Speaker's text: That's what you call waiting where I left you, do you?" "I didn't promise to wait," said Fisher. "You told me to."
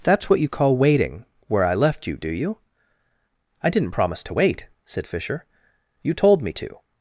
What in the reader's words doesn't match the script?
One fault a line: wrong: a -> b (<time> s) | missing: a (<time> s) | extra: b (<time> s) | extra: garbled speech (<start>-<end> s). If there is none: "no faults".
no faults